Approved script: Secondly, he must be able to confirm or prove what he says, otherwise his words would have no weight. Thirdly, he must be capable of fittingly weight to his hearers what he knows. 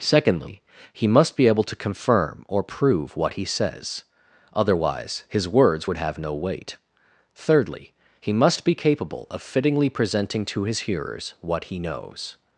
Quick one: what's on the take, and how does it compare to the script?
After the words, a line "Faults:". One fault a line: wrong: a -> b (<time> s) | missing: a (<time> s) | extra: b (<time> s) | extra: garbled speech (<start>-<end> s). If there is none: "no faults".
Secondly, he must be able to confirm or prove what he says, otherwise his words would have no weight. Thirdly, he must be capable of fittingly presenting to his hearers what he knows.
Faults:
wrong: weight -> presenting (9.9 s)